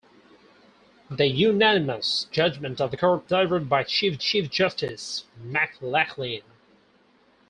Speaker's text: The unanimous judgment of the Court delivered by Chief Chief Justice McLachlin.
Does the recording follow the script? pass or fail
pass